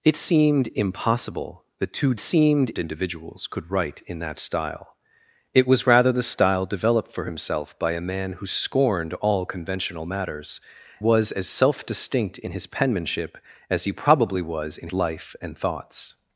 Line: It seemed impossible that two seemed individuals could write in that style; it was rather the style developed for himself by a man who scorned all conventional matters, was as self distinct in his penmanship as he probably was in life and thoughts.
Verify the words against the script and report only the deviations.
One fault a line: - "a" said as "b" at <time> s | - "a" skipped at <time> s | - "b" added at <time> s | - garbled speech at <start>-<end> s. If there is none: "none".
none